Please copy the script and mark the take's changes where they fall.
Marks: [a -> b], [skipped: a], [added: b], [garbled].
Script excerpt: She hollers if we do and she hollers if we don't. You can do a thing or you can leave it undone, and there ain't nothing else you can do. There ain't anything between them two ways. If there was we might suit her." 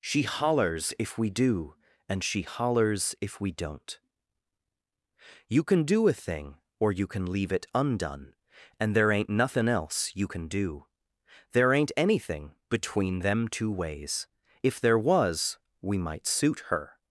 She hollers if we do and she hollers if we don't. You can do a thing or you can leave it undone, and there ain't nothing else you can do. There ain't anything between them two ways. If there was we might suit her."